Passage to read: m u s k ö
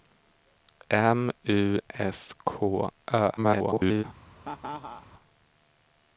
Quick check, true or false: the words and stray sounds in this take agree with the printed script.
false